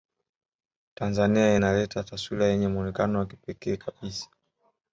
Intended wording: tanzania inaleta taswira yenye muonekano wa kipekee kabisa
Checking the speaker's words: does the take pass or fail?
pass